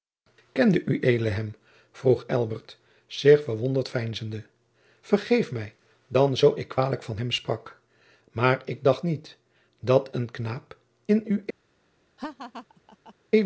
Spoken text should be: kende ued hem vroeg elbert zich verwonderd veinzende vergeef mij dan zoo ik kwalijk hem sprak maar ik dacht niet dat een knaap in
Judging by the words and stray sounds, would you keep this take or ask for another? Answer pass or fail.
fail